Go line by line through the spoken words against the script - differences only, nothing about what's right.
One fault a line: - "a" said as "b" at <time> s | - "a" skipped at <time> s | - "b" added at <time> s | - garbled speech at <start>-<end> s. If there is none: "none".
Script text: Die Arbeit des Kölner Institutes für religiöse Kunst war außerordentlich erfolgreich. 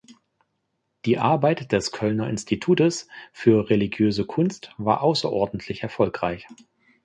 none